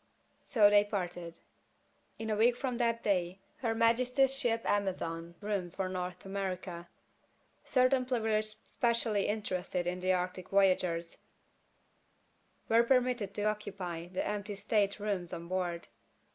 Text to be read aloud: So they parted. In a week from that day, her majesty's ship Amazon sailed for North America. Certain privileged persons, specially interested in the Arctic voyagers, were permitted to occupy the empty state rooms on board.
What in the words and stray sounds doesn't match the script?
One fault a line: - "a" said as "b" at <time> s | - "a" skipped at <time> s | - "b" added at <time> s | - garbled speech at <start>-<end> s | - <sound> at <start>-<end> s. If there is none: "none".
- "sailed" said as "rooms" at 5.4 s
- "persons" skipped at 8.6 s